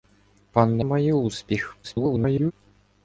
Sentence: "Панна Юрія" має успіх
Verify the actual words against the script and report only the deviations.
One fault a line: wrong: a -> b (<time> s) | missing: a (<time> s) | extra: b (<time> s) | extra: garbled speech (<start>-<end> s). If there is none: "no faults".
missing: Юрія (0.9 s)
extra: garbled speech (1.8-2.5 s)